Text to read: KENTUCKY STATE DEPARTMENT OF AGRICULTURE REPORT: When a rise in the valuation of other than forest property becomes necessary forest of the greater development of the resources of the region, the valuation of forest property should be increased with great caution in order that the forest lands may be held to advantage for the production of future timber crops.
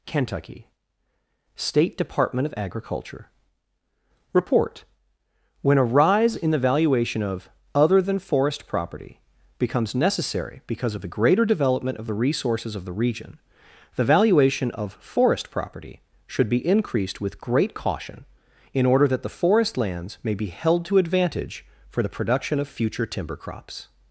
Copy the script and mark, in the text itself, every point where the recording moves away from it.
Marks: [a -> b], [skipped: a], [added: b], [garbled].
KENTUCKY STATE DEPARTMENT OF AGRICULTURE REPORT: When a rise in the valuation of other than forest property becomes necessary [forest -> because] of the greater development of the resources of the region, the valuation of forest property should be increased with great caution in order that the forest lands may be held to advantage for the production of future timber crops.